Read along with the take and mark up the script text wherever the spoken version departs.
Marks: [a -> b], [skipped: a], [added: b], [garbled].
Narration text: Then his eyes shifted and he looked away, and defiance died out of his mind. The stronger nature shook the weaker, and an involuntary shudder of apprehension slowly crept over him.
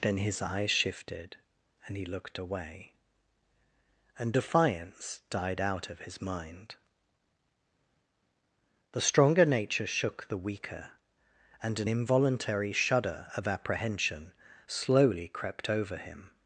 Then his eyes shifted and he looked away, and defiance died out of his mind. The stronger nature shook the weaker, and an involuntary shudder of apprehension slowly crept over him.